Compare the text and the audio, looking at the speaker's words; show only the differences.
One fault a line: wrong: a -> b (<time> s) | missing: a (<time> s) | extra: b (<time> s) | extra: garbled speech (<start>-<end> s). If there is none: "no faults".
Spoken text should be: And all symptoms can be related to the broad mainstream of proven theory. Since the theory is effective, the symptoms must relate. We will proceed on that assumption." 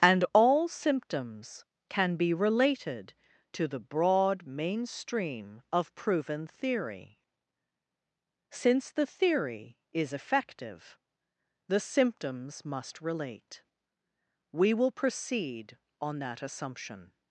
no faults